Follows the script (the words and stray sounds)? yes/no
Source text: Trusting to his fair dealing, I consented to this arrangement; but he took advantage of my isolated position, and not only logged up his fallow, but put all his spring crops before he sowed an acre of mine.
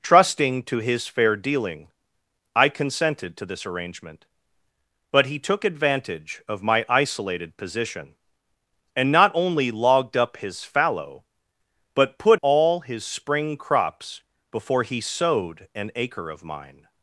yes